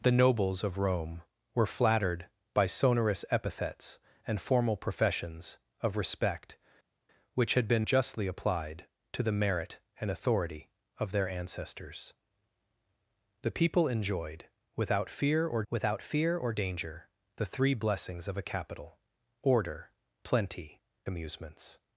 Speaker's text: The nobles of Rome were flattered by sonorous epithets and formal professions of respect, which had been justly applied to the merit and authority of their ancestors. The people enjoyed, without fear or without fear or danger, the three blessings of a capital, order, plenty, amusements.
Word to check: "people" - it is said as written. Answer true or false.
true